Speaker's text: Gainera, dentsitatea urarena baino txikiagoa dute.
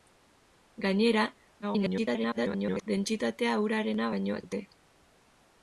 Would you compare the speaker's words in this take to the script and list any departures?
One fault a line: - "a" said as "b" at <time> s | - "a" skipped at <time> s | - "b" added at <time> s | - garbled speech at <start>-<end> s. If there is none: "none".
- garbled speech at 1.6-2.9 s
- "txikiagoa" skipped at 4.4 s